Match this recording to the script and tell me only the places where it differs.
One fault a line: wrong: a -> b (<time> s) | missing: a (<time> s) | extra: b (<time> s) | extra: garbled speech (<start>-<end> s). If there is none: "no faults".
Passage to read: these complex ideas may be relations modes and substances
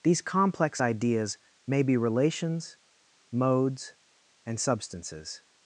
no faults